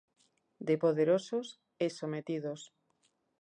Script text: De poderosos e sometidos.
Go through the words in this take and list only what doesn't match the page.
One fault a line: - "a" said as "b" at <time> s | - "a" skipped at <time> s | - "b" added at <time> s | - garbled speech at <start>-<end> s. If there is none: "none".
none